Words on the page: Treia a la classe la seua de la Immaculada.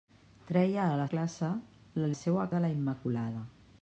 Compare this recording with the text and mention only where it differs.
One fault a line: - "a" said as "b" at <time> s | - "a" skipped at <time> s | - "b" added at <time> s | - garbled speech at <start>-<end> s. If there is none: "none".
none